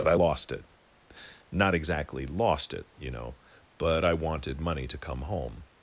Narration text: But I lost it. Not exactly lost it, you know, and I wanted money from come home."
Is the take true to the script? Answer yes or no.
no